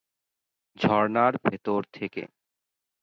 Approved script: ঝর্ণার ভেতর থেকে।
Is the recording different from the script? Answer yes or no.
no